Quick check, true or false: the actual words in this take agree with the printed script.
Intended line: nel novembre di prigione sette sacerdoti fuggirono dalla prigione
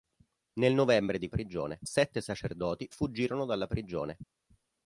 true